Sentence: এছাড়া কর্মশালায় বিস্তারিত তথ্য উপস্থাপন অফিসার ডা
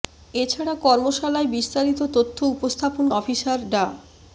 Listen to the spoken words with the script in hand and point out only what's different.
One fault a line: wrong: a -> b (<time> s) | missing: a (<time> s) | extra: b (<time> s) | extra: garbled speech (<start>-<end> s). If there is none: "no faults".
no faults